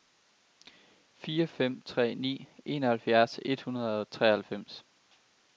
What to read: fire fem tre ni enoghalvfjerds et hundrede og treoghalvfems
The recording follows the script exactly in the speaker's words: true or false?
true